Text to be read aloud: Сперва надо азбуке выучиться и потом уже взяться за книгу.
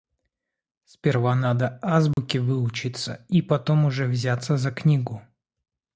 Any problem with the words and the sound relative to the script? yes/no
yes